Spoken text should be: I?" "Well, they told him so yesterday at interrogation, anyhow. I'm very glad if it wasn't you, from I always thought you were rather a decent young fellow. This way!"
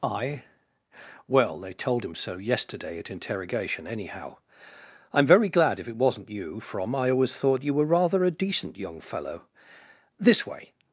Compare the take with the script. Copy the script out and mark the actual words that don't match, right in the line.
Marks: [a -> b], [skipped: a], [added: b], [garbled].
I?" "Well, they told him so yesterday at interrogation, anyhow. I'm very glad if it wasn't you, from I always thought you were rather a decent young fellow. This way!"